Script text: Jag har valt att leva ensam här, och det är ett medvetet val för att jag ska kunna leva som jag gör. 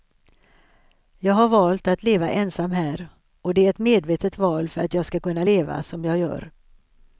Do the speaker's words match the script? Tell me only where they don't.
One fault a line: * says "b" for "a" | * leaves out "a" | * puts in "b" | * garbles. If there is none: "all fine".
all fine